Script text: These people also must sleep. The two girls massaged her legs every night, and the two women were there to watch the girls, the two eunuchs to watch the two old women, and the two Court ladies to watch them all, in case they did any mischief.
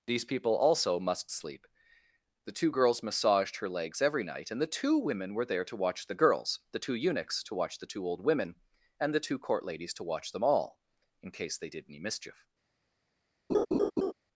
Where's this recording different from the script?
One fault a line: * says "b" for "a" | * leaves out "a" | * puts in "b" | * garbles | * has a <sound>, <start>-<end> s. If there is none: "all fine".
* has a laugh, 13.5-14.1 s